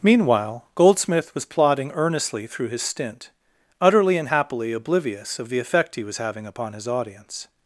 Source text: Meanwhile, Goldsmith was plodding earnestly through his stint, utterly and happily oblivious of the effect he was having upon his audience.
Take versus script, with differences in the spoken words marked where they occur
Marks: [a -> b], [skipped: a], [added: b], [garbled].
Meanwhile, Goldsmith was plodding earnestly through his stint, utterly and happily oblivious of the effect he was having upon his audience.